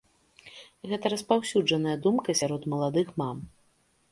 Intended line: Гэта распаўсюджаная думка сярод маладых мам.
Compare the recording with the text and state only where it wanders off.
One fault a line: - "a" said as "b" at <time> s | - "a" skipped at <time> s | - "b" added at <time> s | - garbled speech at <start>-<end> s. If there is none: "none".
none